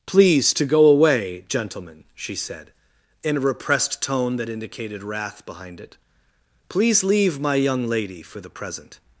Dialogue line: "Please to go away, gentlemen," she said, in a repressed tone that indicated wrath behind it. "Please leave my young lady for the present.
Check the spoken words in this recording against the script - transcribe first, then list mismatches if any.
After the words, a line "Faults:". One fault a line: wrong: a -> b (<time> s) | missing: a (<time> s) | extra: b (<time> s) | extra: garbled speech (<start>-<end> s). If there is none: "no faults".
"Please to go away, gentlemen," she said, in a repressed tone that indicated wrath behind it. "Please leave my young lady for the present.
Faults:
no faults